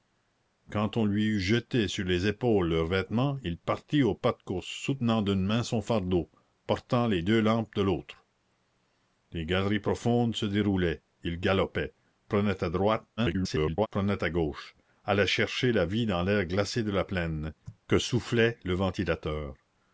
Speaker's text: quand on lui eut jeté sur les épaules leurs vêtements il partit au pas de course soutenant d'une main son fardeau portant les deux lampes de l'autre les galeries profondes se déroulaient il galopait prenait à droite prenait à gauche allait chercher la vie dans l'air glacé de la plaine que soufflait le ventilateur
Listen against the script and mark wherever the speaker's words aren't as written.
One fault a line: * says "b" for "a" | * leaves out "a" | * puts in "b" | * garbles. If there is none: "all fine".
* garbles